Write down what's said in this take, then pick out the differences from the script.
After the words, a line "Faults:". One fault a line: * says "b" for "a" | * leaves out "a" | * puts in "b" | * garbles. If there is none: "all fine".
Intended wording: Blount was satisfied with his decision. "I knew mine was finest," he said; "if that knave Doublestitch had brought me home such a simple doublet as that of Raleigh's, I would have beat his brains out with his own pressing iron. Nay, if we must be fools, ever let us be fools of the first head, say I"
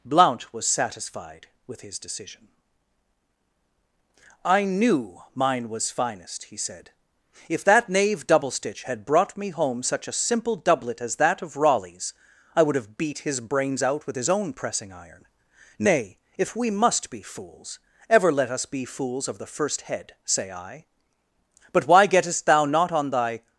Blount was satisfied with his decision. "I knew mine was finest," he said; "if that knave Doublestitch had brought me home such a simple doublet as that of Raleigh's, I would have beat his brains out with his own pressing iron. Nay, if we must be fools, ever let us be fools of the first head, say I". "But why gettest thou not on thy
Faults:
* puts in "But why gettest thou not on thy"